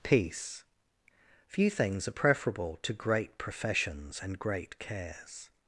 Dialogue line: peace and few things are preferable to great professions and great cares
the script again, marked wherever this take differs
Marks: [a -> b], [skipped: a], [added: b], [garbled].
peace [skipped: and] few things are preferable to great professions and great cares